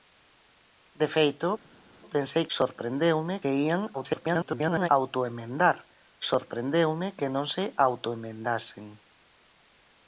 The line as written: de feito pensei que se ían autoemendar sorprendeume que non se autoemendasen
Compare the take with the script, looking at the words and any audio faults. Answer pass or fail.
fail